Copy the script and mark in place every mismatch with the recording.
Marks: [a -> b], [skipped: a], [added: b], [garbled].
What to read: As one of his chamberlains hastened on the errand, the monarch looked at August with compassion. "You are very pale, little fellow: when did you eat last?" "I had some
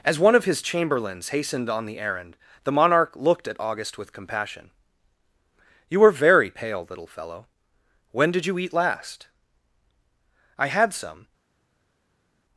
As one of his chamberlains hastened on the errand, the monarch looked at August with compassion. "You are very pale, little fellow: when did you eat last?" "I had some